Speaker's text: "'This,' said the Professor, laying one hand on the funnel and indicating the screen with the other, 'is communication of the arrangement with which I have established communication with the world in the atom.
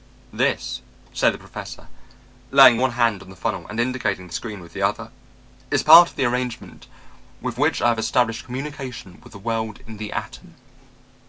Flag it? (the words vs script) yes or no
yes